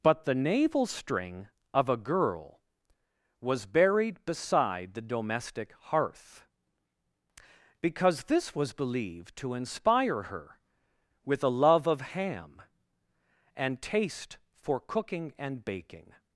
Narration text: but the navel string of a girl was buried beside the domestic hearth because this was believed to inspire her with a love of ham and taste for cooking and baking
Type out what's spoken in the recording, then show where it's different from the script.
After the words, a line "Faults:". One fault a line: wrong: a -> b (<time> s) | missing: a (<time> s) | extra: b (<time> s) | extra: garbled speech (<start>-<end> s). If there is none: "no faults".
but the navel string of a girl was buried beside the domestic hearth because this was believed to inspire her with a love of ham and taste for cooking and baking
Faults:
no faults